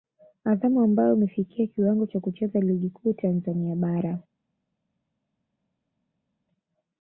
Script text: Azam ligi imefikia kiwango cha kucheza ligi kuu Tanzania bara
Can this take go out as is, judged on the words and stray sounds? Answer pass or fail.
fail